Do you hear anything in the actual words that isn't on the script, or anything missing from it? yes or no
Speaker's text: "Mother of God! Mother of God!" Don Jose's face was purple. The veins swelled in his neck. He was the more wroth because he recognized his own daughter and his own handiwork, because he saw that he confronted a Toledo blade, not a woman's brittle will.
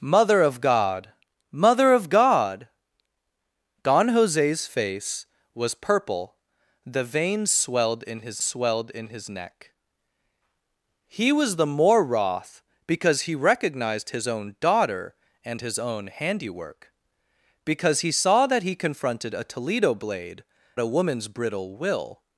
yes